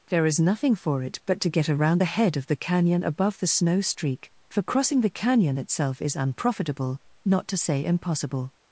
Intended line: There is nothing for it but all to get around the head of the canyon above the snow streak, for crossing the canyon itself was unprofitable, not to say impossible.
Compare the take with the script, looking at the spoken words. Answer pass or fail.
fail